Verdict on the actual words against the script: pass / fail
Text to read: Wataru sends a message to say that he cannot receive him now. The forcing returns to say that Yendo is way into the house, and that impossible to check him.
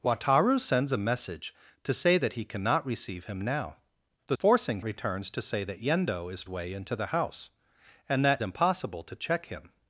pass